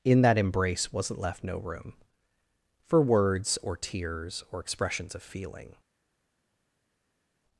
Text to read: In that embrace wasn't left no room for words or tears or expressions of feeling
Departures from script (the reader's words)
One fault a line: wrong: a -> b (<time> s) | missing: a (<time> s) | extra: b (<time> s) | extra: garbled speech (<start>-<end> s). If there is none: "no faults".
no faults